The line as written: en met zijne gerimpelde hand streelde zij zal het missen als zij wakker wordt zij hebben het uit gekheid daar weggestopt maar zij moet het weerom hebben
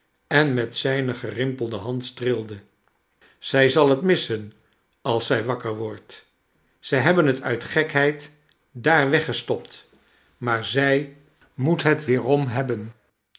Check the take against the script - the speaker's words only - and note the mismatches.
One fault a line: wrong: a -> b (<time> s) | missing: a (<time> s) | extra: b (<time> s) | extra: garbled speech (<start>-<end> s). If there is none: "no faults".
no faults